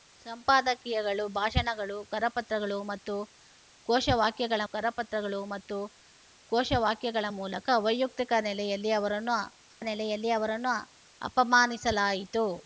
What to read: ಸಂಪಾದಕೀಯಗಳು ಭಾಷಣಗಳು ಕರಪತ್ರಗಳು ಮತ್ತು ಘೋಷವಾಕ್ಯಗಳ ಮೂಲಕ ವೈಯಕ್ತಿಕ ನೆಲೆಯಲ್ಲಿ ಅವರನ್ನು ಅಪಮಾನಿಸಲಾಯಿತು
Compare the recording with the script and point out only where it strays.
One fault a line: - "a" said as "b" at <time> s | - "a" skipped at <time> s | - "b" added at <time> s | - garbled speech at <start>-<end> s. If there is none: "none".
- "ಕರಪತ್ರಗಳು ಮತ್ತು ಘೋಷವಾಕ್ಯಗಳ" added at 4.7 s
- "ನೆಲೆಯಲ್ಲಿ ಅವರನ್ನು" added at 9.8 s